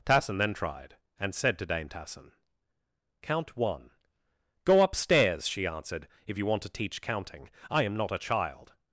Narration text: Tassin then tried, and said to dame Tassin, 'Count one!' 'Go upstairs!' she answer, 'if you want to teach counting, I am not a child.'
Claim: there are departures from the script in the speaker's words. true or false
true